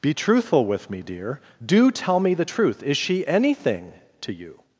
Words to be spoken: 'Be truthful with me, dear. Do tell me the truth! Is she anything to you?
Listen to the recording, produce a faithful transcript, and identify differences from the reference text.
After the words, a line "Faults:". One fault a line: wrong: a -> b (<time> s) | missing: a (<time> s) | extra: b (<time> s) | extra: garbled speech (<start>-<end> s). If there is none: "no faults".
'Be truthful with me, dear. Do tell me the truth! Is she anything to you?
Faults:
no faults